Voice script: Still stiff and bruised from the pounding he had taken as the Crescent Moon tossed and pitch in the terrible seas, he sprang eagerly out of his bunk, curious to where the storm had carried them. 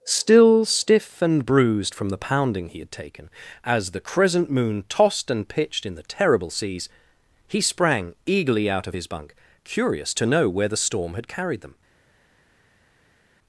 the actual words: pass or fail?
fail